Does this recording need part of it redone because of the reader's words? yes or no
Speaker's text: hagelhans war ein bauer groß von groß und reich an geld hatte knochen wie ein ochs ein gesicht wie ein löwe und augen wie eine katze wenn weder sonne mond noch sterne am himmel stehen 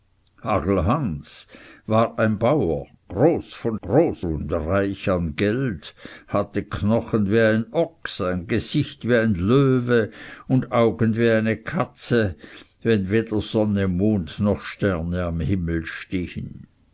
no